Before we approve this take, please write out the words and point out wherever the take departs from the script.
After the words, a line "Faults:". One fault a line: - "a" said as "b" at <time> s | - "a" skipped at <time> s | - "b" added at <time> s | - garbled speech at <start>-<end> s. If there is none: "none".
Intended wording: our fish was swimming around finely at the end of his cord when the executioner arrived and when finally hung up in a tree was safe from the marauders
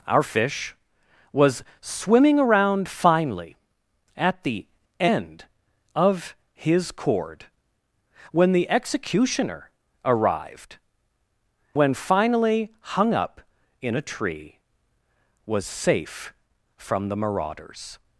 our fish was swimming around finely at the end of his cord when the executioner arrived when finally hung up in a tree was safe from the marauders
Faults:
- "and" skipped at 10.8 s